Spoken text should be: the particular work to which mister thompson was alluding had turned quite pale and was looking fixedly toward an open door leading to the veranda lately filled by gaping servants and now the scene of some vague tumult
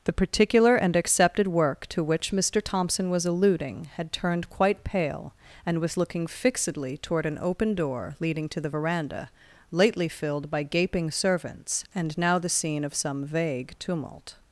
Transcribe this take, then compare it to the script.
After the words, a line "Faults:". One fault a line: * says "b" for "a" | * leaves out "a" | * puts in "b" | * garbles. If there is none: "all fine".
the particular and accepted work to which mister thompson was alluding had turned quite pale and was looking fixedly toward an open door leading to the veranda lately filled by gaping servants and now the scene of some vague tumult
Faults:
* puts in "and accepted"